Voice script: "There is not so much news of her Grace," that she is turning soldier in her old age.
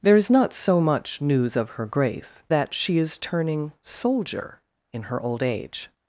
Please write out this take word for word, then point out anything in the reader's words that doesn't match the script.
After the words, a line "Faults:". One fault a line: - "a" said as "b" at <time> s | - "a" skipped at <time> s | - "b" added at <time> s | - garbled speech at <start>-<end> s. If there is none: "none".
"There is not so much news of her Grace," that she is turning soldier in her old age.
Faults:
none